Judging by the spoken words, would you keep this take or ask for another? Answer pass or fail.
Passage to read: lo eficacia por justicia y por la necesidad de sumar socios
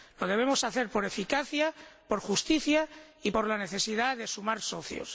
fail